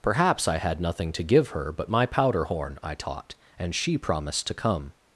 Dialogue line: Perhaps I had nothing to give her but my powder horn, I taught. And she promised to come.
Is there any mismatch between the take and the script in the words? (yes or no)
no